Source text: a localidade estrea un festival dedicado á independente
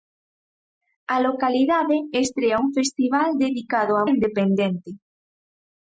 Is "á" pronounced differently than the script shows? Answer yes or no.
no